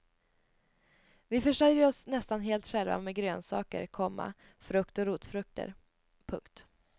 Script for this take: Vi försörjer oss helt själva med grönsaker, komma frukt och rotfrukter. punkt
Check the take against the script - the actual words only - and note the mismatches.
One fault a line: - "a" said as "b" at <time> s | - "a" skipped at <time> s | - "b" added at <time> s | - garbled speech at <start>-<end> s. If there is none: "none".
- "nästan" added at 2.1 s